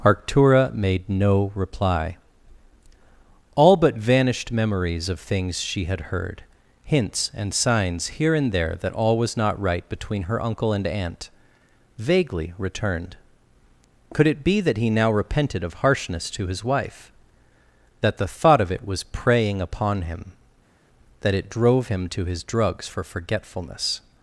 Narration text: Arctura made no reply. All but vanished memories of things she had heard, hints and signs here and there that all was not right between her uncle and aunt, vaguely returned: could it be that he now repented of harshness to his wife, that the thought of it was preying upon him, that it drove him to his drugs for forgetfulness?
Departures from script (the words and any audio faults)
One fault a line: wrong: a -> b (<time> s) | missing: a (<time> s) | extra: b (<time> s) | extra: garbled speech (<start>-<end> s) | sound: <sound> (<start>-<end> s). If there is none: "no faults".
no faults